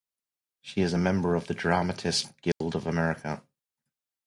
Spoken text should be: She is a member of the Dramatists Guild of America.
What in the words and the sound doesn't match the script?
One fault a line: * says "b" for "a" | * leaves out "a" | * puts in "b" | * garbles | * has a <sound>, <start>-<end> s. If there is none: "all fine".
* has a dropout, 2.5-2.6 s